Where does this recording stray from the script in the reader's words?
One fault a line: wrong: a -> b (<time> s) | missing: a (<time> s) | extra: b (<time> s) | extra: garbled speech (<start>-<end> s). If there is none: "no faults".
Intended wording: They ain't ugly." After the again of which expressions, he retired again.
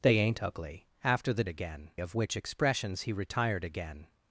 no faults